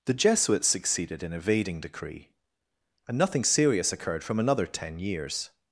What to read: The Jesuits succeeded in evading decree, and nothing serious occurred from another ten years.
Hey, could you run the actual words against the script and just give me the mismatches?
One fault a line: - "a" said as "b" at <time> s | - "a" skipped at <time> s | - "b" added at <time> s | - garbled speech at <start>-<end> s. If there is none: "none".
none